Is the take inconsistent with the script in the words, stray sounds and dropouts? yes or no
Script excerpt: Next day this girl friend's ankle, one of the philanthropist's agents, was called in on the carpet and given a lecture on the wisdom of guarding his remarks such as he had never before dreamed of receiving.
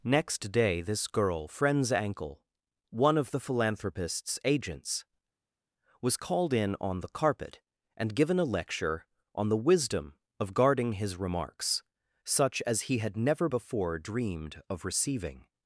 no